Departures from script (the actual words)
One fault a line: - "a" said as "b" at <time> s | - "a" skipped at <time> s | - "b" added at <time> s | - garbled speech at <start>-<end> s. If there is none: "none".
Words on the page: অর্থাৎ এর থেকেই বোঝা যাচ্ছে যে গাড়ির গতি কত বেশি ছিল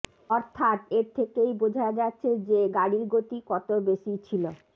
none